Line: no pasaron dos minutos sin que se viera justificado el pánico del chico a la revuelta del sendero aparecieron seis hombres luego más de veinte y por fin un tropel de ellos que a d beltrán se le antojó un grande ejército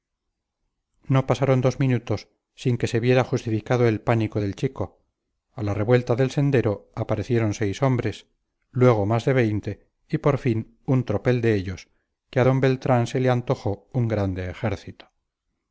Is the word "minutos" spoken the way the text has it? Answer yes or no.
yes